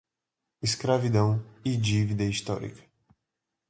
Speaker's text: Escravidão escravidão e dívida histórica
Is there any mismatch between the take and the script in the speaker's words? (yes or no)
yes